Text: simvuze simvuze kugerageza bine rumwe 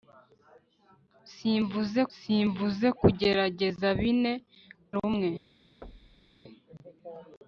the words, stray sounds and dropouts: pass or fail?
fail